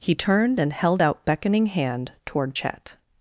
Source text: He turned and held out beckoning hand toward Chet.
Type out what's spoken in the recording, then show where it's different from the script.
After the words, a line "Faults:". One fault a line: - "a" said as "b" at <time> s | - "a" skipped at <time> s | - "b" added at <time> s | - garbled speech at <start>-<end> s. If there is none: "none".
He turned and held out beckoning hand toward Chet.
Faults:
none